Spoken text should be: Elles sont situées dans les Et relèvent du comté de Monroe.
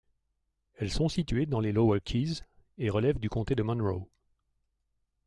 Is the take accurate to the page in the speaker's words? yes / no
no